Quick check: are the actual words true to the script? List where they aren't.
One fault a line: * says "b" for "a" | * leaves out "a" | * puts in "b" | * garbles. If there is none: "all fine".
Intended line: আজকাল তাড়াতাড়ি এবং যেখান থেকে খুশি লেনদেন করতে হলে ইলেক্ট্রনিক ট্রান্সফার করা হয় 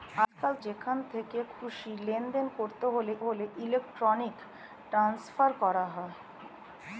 * leaves out "তাড়াতাড়ি এবং"
* puts in "হলে"